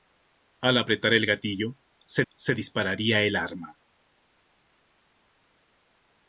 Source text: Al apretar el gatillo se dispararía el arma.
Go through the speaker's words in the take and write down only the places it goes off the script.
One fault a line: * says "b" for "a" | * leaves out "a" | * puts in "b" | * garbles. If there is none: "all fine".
* puts in "se"